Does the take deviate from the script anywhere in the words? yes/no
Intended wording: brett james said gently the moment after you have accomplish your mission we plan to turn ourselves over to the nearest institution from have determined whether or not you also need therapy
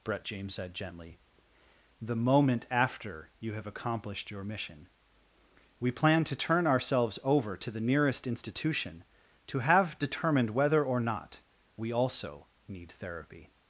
yes